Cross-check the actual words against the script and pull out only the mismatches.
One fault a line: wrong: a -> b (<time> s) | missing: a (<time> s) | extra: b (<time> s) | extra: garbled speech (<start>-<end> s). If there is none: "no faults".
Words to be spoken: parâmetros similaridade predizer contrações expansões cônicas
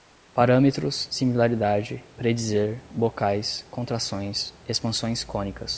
extra: bocais (2.9 s)